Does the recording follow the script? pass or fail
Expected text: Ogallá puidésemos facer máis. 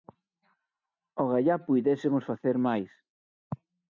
pass